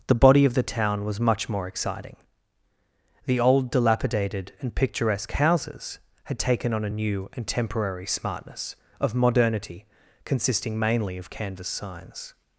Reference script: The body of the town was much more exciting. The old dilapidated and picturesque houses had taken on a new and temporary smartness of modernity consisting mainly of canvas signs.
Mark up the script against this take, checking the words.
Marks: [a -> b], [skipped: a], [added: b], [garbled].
The body of the town was much more exciting. The old dilapidated and picturesque houses had taken on a new and temporary smartness of modernity consisting mainly of canvas signs.